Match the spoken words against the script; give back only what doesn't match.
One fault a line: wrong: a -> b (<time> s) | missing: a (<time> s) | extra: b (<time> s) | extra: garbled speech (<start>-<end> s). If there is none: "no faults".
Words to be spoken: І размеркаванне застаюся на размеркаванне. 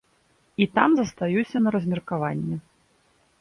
wrong: размеркаванне -> там (0.8 s)